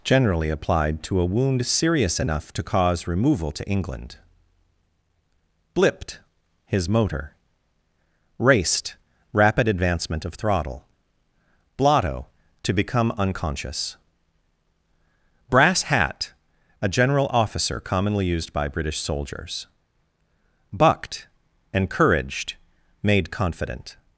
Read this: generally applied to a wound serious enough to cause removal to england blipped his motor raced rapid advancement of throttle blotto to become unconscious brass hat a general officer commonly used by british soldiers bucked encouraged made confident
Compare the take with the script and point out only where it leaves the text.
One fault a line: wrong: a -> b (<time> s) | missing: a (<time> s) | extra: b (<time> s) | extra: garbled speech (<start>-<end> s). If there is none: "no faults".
no faults